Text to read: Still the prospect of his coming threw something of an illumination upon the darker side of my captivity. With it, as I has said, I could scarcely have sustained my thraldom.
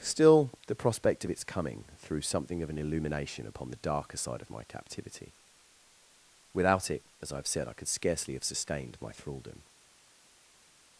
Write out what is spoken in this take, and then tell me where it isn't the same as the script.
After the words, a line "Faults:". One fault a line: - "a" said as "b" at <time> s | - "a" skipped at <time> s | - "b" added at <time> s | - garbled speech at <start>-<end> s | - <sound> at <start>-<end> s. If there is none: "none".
Still the prospect of its coming threw something of an illumination upon the darker side of my captivity. Without it, as I have said, I could scarcely have sustained my thraldom.
Faults:
- "his" said as "its" at 1.3 s
- "With" said as "Without" at 6.5 s
- "has" said as "have" at 7.4 s